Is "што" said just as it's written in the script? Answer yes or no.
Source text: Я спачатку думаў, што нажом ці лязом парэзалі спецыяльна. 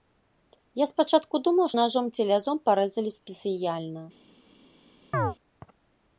no